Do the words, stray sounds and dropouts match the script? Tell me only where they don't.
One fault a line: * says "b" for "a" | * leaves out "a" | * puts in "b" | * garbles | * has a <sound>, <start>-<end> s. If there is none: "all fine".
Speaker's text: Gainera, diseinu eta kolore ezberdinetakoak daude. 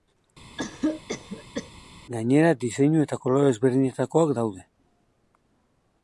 * has a cough, 0.6-1.7 s